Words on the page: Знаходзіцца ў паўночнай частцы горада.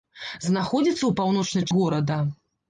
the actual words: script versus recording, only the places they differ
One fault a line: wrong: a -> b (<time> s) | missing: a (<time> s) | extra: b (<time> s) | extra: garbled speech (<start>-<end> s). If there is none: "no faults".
missing: частцы (1.7 s)